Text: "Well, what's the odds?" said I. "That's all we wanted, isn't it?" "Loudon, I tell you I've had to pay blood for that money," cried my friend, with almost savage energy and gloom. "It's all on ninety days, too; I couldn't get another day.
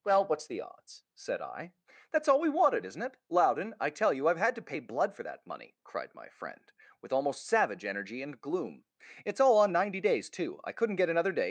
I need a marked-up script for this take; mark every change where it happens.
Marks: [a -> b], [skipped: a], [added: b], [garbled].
"Well, what's the odds?" said I. "That's all we wanted, isn't it?" "Loudon, I tell you I've had to pay blood for that money," cried my friend, with almost savage energy and gloom. "It's all on ninety days, too; I couldn't get another day.